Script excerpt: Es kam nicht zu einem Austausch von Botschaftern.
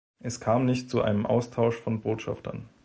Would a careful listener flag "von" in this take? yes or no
no